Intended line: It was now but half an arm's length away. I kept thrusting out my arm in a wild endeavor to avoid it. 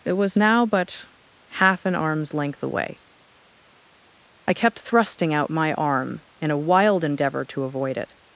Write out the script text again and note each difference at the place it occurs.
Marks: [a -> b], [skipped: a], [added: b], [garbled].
It was now but half an arm's length away. I kept thrusting out my arm in a wild endeavor to avoid it.